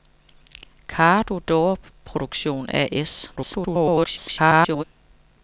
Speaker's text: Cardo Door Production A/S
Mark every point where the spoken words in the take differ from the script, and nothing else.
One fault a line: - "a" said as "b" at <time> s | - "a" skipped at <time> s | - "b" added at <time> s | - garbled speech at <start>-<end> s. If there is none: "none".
- garbled speech at 3.4-4.8 s